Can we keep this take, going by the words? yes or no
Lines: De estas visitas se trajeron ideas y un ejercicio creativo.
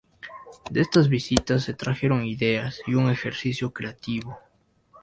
yes